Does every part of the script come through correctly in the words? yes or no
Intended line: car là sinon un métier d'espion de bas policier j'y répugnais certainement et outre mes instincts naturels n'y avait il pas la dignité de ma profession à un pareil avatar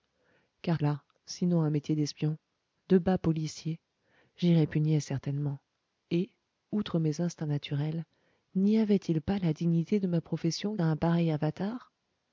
yes